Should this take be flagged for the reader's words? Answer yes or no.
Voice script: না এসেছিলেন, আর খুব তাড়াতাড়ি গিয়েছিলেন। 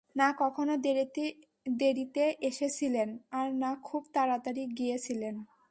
yes